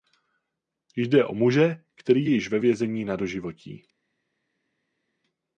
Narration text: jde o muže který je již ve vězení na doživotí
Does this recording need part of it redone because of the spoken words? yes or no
no